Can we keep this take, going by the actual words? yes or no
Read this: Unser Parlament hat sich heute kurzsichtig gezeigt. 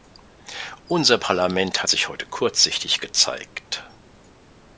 yes